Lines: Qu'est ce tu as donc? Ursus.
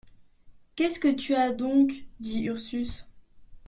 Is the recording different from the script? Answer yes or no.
yes